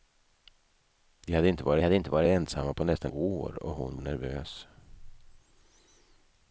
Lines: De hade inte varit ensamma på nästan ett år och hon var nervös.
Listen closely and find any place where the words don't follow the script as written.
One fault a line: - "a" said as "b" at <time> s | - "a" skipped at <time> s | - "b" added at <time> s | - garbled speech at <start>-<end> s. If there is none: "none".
- "hade inte varit" added at 1.8 s
- "ett" skipped at 3.1 s
- "var" skipped at 4.0 s